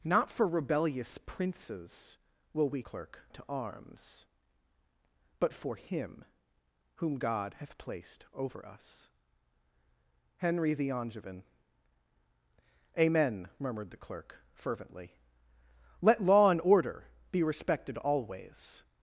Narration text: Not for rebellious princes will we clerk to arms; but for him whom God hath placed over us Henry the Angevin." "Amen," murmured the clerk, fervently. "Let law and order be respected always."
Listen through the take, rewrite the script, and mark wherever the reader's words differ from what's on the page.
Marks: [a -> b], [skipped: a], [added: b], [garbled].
Not for rebellious princes will we clerk to arms; but for him whom God hath placed over us Henry the Angevin." "Amen," murmured the clerk, fervently. "Let law and order be respected always."